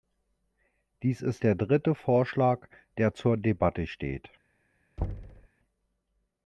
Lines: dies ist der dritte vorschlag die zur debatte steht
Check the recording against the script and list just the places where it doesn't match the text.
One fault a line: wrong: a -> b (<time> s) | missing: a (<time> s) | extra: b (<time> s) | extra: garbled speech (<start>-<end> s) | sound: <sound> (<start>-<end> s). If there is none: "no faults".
wrong: die -> der (3.0 s)
sound: thud (5.0-5.5 s)